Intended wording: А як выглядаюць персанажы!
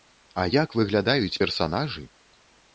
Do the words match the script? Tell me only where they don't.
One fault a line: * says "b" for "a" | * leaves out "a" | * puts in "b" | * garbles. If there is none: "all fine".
all fine